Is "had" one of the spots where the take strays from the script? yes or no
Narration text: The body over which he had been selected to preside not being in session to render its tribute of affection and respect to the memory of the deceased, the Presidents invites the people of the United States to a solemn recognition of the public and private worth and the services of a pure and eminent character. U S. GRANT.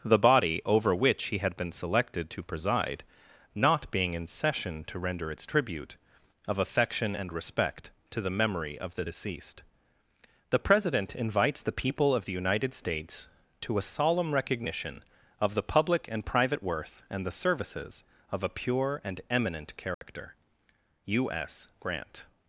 no